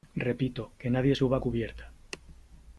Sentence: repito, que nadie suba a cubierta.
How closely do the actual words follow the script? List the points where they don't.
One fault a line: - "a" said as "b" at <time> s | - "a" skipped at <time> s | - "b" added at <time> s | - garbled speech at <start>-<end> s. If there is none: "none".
none